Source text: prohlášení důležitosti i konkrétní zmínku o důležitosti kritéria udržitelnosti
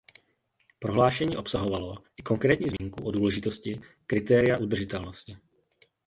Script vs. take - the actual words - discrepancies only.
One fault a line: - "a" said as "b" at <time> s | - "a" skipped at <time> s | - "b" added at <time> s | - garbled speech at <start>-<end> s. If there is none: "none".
- "důležitosti" said as "obsahovalo" at 1.4 s